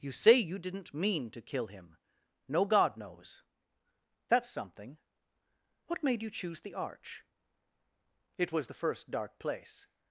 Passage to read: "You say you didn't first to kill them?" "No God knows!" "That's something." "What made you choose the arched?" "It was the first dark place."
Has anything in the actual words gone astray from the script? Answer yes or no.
yes